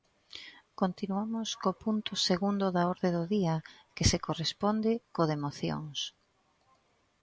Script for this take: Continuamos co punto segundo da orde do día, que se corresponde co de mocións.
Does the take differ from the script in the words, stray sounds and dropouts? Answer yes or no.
no